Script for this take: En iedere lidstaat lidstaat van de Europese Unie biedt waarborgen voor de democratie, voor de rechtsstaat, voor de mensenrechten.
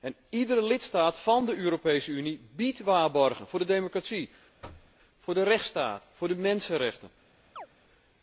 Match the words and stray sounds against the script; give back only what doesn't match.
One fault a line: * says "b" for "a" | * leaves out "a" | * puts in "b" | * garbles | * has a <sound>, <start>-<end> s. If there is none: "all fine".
* leaves out "lidstaat"
* has a thud, 4.6-5.0 s
* has a chirp, 7.6-7.7 s